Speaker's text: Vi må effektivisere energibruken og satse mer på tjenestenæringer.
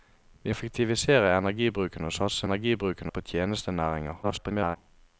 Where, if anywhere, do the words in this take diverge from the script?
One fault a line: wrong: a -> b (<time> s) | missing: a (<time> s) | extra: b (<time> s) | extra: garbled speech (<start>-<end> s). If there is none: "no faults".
missing: må (0.5 s)
wrong: mer -> energibruken (2.4 s)
extra: garbled speech (4.2-4.8 s)